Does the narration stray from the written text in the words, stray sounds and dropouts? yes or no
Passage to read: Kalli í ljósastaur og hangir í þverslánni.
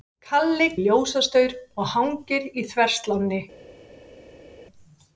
no